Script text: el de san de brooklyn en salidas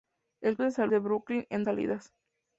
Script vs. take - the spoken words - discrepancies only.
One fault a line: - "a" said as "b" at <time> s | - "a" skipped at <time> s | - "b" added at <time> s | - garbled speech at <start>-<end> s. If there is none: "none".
none